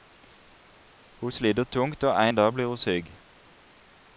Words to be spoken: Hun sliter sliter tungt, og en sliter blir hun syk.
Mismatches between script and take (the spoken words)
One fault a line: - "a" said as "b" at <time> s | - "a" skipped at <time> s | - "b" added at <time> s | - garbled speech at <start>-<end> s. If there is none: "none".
- "sliter" skipped at 1.6 s
- "sliter" said as "dag" at 2.3 s